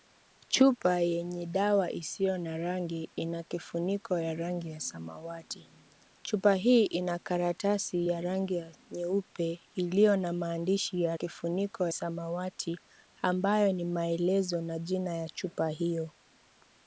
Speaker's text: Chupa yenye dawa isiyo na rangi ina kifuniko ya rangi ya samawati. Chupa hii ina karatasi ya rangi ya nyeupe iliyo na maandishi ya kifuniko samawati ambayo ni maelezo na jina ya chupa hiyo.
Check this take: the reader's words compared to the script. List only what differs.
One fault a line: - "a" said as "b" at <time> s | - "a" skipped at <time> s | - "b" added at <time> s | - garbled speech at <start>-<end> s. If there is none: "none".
none